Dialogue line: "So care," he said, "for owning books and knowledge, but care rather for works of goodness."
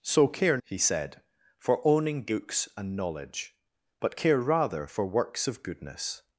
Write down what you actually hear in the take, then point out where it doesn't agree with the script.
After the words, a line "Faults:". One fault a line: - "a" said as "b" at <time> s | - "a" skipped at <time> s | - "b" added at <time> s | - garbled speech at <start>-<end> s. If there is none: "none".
"So care," he said, "for owning books and knowledge, but care rather for works of goodness."
Faults:
none